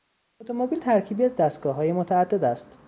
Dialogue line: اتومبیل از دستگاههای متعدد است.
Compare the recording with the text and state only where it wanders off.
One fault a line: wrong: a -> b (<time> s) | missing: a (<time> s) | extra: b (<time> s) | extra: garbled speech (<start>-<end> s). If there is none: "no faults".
extra: ترکیبی (0.8 s)